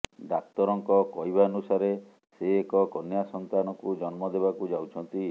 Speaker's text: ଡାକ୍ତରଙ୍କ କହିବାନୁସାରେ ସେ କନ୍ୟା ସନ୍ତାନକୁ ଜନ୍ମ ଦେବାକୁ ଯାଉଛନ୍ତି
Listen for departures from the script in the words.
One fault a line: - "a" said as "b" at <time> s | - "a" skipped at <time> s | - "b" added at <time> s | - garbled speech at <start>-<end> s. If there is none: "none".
- "ଏକ" added at 2.5 s